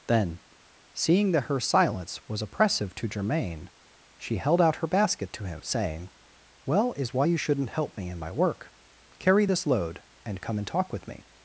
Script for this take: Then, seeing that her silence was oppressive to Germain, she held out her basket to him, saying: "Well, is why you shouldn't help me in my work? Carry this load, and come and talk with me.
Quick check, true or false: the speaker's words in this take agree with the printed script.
true